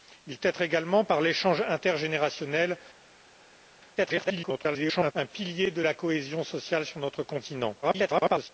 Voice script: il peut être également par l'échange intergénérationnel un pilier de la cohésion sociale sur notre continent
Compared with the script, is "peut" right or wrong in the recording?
wrong